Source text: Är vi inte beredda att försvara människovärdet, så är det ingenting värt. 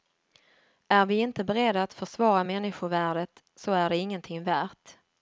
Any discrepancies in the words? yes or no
no